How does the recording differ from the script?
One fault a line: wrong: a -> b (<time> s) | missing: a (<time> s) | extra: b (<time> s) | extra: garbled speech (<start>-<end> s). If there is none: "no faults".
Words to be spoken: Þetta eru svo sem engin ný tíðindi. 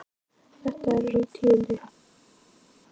missing: svo sem engin (1.1 s)